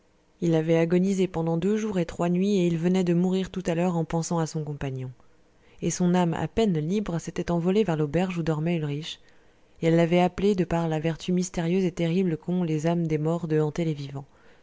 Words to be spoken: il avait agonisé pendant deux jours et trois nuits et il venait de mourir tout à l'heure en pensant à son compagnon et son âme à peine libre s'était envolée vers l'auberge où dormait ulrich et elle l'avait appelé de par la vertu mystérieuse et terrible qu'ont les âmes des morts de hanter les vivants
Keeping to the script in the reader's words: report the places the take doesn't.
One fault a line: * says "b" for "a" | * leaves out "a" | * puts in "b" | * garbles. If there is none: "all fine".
all fine